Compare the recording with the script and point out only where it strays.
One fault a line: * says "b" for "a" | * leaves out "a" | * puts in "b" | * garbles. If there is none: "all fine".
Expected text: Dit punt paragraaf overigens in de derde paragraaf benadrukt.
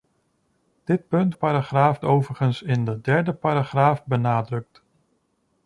all fine